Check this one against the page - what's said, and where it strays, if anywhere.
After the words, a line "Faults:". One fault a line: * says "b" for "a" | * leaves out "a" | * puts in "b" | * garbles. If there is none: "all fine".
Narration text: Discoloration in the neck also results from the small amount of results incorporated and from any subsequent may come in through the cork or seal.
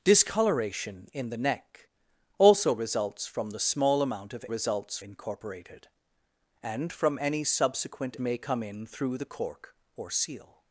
Discoloration in the neck also results from the small amount of results incorporated and from any subsequent may come in through the cork or seal.
Faults:
all fine